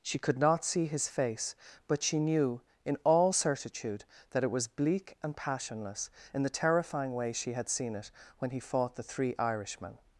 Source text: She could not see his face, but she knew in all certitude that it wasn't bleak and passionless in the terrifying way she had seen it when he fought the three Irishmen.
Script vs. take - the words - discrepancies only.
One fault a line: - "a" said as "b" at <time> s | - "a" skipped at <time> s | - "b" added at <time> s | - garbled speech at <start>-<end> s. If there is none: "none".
- "wasn't" said as "was" at 4.5 s